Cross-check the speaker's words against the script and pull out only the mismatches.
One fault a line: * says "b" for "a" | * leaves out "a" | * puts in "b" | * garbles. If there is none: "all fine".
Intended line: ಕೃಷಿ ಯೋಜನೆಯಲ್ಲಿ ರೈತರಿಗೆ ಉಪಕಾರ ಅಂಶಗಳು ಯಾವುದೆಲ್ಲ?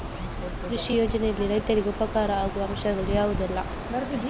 * puts in "ಆಗುವ"